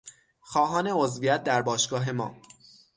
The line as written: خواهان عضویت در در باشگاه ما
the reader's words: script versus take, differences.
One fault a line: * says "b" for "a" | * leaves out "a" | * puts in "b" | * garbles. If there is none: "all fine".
* leaves out "در"